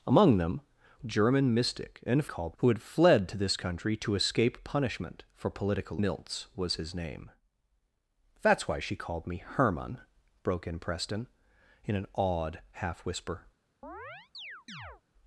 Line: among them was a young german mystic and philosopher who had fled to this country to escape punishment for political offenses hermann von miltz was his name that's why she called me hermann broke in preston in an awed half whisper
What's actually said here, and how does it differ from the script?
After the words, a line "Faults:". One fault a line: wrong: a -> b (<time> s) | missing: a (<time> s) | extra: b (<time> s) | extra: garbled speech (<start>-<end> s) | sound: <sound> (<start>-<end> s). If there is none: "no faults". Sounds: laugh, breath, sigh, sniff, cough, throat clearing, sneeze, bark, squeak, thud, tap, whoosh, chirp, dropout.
among them german mystic and called who had fled to this country to escape punishment for political miltz was his name that's why she called me hermann broke in preston in an awed half whisper
Faults:
missing: was a young (0.6 s)
wrong: philosopher -> called (2.2 s)
missing: offenses hermann von (6.0 s)
sound: chirp (13.8-15.0 s)